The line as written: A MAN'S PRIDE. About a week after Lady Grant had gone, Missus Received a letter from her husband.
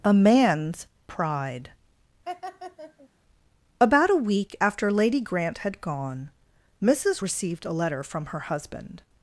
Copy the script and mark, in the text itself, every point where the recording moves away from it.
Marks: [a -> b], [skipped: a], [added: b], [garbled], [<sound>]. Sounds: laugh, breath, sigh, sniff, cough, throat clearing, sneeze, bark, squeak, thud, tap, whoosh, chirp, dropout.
A MAN'S PRIDE. [laugh] About a week after Lady Grant had gone, Missus Received a letter from her husband.